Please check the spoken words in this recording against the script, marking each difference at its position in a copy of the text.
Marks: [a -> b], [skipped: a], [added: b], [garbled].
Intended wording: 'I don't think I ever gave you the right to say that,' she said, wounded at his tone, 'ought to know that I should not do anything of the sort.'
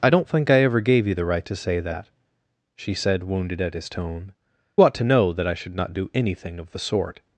'I don't think I ever gave you the right to say that,' she said, wounded at his tone, 'ought to know that I should not do anything of the sort.'